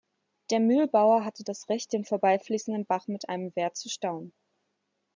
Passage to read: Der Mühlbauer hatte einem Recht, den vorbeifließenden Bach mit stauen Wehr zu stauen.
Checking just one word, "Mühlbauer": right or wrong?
right